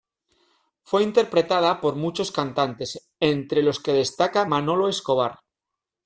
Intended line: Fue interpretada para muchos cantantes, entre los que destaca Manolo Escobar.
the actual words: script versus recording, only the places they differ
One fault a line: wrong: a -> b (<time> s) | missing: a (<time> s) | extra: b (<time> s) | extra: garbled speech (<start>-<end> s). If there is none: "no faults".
wrong: para -> por (1.8 s)